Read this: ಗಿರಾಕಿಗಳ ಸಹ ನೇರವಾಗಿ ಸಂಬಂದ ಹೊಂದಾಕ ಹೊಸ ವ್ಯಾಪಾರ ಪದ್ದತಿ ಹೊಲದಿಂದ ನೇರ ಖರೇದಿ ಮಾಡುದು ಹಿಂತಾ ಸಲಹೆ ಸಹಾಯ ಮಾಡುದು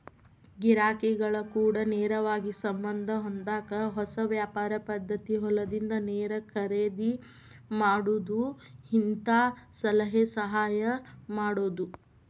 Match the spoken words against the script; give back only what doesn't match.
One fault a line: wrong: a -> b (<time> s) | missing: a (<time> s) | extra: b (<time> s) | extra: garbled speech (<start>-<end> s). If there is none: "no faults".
wrong: ಸಹ -> ಕೂಡ (1.5 s)